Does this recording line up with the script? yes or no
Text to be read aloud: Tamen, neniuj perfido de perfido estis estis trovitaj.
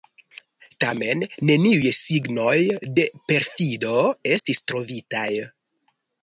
no